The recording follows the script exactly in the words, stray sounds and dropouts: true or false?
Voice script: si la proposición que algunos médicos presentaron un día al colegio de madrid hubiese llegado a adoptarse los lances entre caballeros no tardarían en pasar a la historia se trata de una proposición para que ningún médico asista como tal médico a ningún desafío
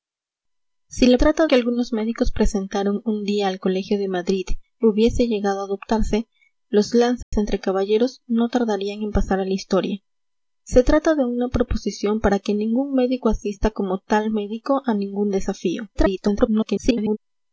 false